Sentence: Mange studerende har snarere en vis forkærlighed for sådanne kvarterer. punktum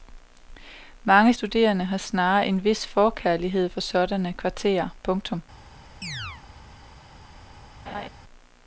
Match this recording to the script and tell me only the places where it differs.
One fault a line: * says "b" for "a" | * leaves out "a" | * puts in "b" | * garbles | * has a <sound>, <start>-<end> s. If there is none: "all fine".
* has a chirp, 6.0-6.4 s
* has a laugh, 7.9-8.1 s